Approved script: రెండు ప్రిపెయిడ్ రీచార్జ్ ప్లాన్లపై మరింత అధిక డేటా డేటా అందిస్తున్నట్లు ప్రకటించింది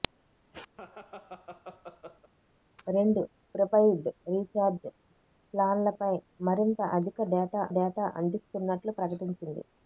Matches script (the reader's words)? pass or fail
pass